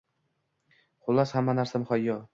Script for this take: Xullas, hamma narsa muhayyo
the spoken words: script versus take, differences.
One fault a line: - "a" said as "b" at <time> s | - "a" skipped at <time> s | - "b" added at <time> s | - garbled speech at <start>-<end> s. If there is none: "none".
none